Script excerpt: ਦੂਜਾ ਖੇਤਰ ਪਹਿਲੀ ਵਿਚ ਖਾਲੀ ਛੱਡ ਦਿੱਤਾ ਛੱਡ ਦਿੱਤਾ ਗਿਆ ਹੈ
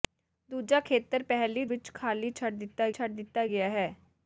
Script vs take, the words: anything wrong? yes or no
no